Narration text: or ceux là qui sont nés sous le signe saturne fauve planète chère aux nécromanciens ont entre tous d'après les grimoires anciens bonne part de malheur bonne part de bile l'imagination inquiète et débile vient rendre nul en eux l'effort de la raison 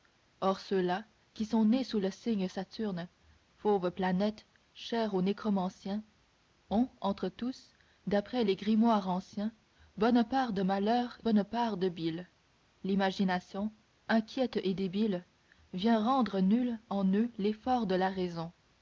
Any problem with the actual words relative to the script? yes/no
no